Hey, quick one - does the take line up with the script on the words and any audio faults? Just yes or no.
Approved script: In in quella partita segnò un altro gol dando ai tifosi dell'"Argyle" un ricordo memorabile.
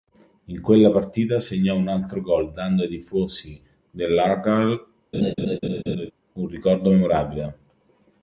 no